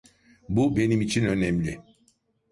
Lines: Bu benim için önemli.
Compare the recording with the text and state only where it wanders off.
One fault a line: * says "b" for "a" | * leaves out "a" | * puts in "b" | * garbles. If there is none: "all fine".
all fine